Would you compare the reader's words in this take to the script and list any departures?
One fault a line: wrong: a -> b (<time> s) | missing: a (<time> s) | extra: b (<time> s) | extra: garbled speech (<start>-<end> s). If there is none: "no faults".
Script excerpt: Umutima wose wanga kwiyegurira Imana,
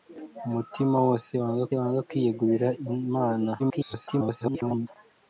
extra: wanga (1.8 s)
extra: garbled speech (3.6-4.9 s)